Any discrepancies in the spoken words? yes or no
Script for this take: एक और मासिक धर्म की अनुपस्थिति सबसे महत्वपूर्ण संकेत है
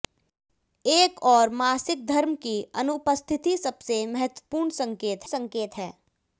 yes